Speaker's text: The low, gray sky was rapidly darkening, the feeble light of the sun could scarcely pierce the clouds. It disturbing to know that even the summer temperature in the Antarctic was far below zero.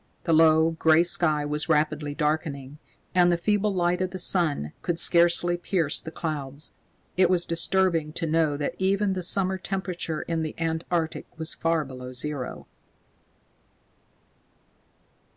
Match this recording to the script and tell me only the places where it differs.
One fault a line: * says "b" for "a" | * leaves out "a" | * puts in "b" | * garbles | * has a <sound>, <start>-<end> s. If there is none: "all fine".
* puts in "and"
* puts in "was"